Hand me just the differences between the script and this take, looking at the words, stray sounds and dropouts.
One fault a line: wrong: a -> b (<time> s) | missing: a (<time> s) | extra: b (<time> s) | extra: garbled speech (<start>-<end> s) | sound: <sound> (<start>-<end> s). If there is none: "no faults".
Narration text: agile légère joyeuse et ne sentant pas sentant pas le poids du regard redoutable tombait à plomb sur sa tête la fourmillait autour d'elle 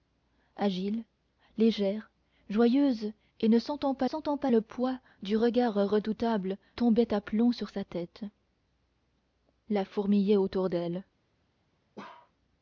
sound: bark (12.0-12.3 s)